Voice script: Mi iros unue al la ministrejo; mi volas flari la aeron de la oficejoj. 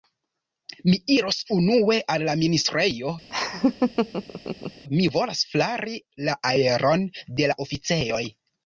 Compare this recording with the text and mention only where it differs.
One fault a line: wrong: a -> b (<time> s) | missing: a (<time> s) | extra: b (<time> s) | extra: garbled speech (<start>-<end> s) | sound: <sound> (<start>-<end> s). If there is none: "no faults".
sound: laugh (3.3-4.8 s)